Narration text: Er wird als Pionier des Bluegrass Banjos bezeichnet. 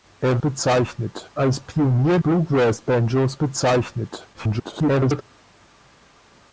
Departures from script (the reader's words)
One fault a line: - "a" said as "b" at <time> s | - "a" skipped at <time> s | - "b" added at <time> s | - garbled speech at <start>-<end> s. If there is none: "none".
- "wird" said as "bezeichnet" at 0.4 s
- "des" skipped at 2.2 s
- garbled speech at 4.3-5.2 s